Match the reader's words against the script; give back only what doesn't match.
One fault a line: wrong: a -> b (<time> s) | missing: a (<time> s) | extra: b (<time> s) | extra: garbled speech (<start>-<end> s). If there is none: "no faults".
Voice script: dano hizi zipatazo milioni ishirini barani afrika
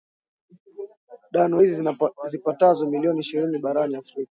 no faults